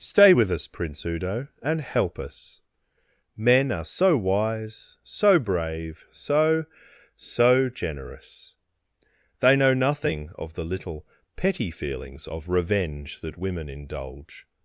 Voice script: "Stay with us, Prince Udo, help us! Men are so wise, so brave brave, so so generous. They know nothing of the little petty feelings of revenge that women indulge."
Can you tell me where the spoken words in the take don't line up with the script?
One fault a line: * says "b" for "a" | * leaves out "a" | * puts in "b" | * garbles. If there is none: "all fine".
* puts in "and"
* leaves out "brave"